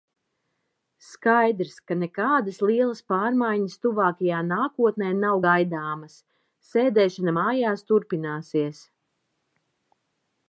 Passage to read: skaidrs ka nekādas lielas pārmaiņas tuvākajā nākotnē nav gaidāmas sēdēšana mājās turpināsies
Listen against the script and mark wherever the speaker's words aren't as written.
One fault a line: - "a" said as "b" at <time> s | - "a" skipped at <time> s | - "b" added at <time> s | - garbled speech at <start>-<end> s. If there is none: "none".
none